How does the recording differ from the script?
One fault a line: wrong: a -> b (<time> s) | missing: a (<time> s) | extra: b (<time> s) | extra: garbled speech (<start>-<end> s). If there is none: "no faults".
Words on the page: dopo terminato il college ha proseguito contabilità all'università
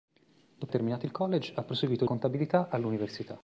no faults